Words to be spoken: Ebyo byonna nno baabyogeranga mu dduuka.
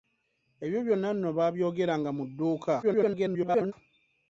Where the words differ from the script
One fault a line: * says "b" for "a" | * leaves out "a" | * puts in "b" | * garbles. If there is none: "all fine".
* garbles